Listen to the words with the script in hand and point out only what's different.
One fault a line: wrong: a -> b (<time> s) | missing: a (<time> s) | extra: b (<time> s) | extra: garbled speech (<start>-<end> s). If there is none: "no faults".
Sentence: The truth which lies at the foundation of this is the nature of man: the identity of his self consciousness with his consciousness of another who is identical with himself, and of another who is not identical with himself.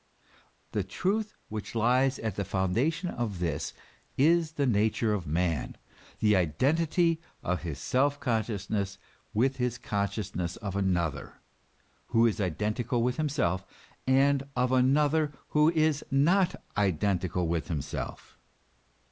no faults